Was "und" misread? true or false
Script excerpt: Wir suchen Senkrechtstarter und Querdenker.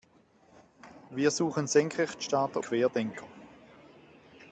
true